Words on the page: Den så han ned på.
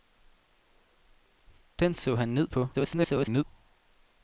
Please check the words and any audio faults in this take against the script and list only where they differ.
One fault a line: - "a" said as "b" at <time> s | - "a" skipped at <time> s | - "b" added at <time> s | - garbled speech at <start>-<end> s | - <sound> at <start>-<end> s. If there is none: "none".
- garbled speech at 2.7-3.4 s